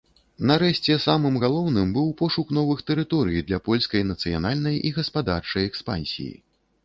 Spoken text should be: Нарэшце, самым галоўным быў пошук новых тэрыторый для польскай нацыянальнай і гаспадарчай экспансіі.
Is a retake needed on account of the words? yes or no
no